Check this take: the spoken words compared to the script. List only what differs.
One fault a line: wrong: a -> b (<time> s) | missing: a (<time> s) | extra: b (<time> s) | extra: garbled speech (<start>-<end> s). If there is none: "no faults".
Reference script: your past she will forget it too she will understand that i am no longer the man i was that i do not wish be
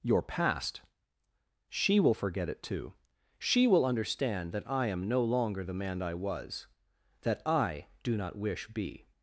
no faults